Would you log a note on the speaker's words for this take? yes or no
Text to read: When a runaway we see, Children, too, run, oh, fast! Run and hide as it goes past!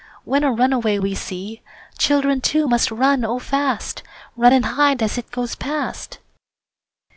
yes